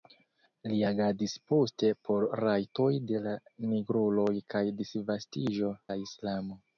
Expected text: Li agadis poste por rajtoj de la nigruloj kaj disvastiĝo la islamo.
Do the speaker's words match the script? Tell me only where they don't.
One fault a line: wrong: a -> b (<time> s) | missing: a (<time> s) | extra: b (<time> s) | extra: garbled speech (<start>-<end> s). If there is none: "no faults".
no faults